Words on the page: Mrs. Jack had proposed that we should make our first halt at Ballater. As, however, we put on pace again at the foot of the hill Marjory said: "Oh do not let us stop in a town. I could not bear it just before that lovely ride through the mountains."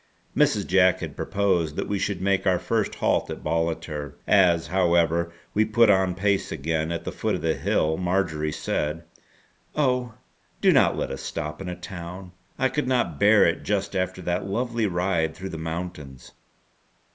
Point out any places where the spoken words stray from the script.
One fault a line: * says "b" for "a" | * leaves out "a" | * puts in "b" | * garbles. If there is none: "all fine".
* says "after" for "before"